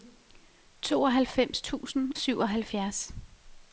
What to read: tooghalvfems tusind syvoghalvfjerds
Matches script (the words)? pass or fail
pass